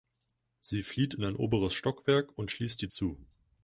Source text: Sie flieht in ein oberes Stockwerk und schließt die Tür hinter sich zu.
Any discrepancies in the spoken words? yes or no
yes